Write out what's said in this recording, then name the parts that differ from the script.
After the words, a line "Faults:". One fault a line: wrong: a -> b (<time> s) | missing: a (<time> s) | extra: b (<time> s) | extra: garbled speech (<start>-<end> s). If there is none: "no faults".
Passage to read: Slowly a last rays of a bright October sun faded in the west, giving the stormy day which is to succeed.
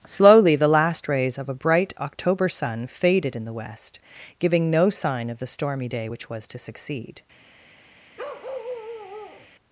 Slowly the last rays of a bright October sun faded in the west, giving no sign of the stormy day which was to succeed.
Faults:
wrong: a -> the (0.6 s)
extra: no sign of (4.7 s)
wrong: is -> was (6.3 s)